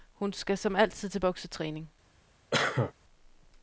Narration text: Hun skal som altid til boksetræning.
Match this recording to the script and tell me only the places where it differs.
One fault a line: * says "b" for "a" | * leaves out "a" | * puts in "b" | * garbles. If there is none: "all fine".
all fine